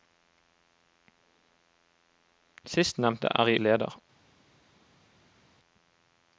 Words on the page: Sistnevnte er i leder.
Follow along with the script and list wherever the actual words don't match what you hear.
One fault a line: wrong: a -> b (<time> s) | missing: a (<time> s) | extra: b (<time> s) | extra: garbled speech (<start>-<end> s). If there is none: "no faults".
no faults